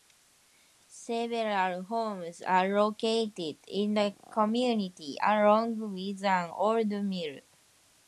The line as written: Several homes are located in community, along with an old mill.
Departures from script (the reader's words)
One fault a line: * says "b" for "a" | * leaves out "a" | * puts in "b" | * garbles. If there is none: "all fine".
* puts in "the"